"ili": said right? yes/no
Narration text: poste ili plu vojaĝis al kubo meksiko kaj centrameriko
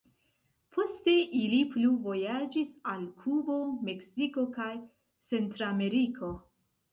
yes